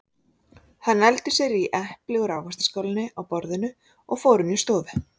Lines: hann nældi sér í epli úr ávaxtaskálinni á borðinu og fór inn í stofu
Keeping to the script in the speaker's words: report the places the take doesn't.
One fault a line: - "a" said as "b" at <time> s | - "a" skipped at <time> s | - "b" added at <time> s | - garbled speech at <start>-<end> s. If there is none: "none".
none